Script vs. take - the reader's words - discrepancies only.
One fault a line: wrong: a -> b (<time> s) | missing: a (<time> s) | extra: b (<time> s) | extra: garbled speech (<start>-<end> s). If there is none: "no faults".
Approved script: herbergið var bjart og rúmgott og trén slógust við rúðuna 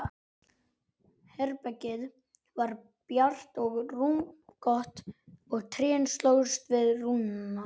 no faults